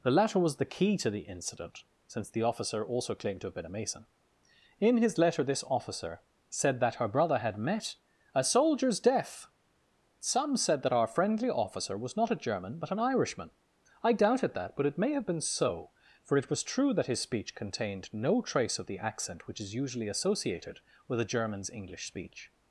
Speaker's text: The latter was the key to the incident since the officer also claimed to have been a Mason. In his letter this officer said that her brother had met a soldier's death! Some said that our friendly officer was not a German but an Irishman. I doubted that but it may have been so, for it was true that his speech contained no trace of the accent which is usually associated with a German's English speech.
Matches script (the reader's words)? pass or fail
pass